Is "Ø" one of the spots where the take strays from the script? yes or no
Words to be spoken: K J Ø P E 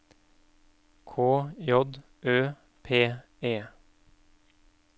no